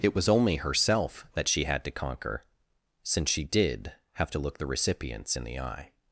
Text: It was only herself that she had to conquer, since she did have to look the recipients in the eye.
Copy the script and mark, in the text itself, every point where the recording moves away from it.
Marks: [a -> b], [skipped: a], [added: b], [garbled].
It was only herself that she had to conquer, since she did have to look the recipients in the eye.